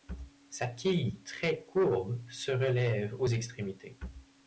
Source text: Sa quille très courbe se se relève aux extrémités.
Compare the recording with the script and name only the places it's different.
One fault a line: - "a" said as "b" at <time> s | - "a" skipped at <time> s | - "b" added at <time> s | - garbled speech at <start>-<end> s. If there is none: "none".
- "se" skipped at 2.5 s